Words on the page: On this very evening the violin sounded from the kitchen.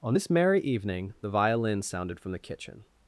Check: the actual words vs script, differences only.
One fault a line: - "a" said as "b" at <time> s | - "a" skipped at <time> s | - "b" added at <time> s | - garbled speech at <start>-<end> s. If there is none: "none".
- "very" said as "merry" at 0.3 s